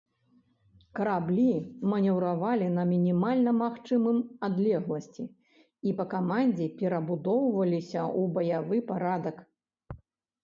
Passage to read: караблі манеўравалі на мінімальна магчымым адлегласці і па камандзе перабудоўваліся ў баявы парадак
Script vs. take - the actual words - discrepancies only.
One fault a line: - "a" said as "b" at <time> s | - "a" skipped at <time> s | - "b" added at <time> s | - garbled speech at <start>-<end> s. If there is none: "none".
none